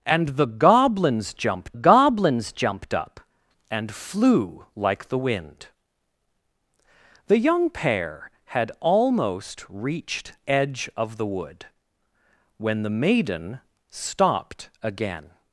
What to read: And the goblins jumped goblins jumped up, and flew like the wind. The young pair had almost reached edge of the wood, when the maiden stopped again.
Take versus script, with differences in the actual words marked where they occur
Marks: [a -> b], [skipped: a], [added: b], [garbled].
And the goblins jumped goblins jumped up, and flew like the wind. The young pair had almost reached edge of the wood, when the maiden stopped again.